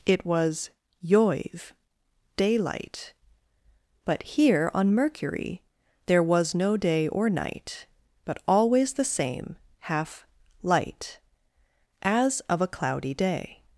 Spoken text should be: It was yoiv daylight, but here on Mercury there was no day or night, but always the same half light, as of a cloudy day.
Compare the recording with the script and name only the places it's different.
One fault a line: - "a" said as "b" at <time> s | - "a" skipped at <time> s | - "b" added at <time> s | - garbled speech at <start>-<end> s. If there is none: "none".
none